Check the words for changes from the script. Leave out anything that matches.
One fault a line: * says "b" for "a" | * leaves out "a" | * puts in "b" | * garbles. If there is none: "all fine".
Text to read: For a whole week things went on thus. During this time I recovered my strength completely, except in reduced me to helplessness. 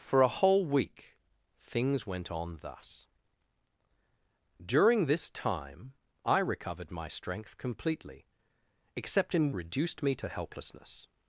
all fine